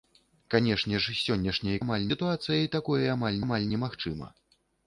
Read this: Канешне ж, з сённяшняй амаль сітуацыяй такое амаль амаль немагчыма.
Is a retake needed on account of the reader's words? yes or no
no